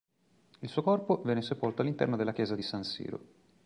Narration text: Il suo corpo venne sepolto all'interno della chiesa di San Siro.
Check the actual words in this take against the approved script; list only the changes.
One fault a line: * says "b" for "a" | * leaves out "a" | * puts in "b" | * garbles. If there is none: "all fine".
all fine